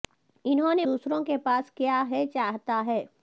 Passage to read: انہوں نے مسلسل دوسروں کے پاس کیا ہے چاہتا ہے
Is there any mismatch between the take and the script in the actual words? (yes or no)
yes